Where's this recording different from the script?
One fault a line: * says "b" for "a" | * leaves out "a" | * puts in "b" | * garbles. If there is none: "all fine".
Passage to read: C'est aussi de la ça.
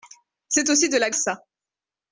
all fine